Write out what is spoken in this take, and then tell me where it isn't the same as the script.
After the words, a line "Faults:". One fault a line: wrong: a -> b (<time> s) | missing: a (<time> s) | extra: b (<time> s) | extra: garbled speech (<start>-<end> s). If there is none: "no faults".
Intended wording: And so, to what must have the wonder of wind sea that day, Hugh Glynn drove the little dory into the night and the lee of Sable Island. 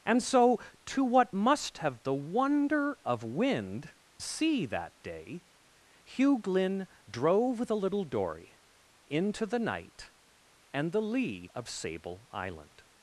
And so, to what must have the wonder of wind sea that day, Hugh Glynn drove the little dory into the night and the lee of Sable Island.
Faults:
no faults